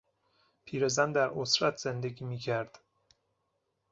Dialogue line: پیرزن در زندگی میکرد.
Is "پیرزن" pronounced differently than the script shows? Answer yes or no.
no